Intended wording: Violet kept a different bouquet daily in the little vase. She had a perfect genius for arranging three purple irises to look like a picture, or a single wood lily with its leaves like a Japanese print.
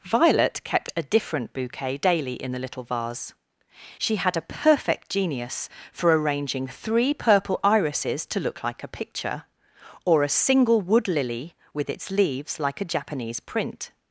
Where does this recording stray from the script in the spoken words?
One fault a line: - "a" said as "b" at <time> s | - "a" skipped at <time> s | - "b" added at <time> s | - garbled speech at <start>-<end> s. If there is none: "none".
none